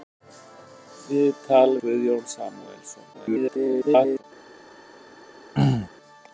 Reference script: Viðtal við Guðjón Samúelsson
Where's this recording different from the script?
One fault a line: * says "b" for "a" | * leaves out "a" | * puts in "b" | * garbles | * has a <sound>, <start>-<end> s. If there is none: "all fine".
* leaves out "við"
* garbles
* has a throat clearing, 5.5-5.9 s